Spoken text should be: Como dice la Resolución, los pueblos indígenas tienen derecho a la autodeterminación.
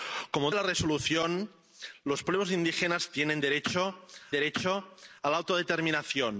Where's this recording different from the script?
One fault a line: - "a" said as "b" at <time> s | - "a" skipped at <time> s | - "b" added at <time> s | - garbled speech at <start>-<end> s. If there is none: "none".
- "dice" skipped at 0.5 s
- "derecho" added at 4.3 s